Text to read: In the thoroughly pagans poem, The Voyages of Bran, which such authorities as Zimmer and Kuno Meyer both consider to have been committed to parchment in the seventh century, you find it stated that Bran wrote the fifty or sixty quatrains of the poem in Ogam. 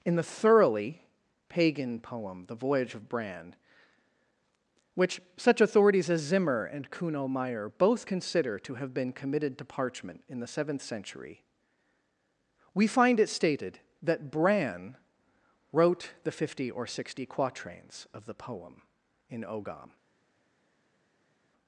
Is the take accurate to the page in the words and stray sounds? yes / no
no